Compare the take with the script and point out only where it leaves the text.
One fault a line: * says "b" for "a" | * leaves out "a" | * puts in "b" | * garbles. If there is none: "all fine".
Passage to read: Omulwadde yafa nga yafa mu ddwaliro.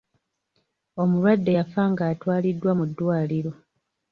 * says "atwaliddwa" for "yafa"